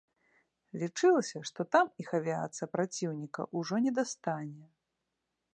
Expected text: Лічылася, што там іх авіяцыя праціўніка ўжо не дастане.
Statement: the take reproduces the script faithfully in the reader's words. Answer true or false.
true